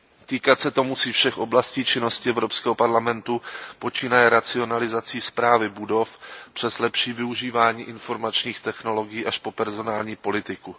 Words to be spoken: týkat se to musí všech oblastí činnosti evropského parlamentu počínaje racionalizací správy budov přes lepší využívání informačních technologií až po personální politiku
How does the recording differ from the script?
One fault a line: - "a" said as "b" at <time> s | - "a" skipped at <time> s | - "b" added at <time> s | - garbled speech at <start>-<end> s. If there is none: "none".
none